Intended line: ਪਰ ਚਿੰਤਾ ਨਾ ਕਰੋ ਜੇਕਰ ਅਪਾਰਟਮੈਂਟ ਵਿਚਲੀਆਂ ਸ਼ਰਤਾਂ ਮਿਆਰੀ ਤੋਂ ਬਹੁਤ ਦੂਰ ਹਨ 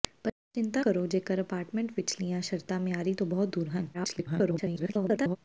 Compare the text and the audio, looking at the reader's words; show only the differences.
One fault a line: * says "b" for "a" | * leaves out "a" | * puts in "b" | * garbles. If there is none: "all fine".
* leaves out "ਨਾ"
* garbles